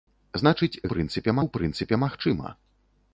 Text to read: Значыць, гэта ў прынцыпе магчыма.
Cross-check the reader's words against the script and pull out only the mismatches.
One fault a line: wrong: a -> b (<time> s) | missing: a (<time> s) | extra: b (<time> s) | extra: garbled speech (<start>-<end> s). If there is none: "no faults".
wrong: гэта -> прынцыпе (0.9 s)